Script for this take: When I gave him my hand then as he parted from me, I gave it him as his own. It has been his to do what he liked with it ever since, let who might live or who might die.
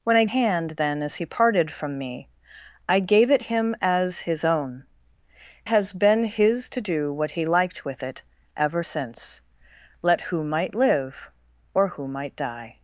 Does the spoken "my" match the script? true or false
false